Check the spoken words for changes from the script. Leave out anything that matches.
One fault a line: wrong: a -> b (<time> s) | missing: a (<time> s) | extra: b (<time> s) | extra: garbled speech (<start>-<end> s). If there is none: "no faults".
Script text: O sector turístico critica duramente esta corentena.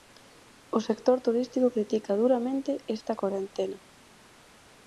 no faults